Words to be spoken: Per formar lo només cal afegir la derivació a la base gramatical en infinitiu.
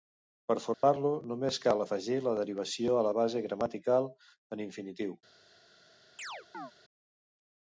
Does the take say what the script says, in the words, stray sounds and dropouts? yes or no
no